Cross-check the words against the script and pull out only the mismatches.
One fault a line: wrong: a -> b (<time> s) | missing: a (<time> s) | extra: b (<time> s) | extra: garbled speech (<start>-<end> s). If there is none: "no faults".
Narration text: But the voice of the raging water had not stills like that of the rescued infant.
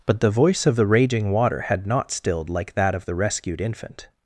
wrong: stills -> stilled (2.1 s)